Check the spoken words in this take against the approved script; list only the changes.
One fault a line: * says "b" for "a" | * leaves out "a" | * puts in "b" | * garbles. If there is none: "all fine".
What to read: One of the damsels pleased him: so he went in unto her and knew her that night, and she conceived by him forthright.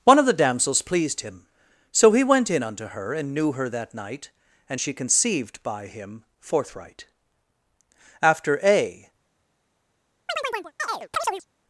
* puts in "After a"